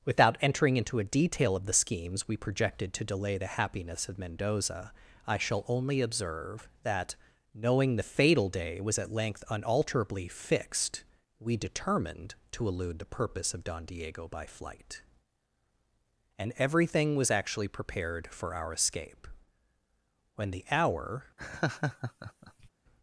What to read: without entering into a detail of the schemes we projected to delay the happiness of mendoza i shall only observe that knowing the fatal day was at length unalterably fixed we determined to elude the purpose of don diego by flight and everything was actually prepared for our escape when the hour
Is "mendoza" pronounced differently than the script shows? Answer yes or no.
no